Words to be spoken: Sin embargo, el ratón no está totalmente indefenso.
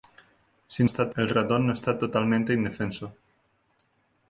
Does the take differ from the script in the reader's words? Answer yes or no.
yes